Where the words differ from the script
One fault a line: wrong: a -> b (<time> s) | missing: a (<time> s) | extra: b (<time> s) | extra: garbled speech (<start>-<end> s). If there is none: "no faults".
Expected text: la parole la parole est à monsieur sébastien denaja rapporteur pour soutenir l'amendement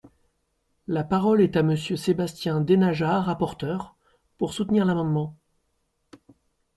missing: la parole (1.4 s)